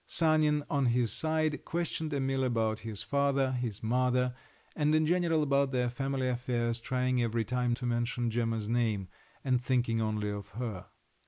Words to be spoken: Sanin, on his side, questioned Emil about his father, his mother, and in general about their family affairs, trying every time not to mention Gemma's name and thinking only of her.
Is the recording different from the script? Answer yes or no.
yes